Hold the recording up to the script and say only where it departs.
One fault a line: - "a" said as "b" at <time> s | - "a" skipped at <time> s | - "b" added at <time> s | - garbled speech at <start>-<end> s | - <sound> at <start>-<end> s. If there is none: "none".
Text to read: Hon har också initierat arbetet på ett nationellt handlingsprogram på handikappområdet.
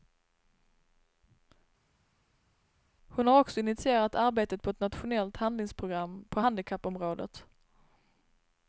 none